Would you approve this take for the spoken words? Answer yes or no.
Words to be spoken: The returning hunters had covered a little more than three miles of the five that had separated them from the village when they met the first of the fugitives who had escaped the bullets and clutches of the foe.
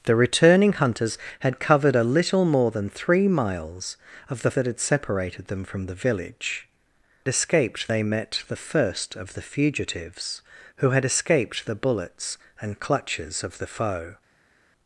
no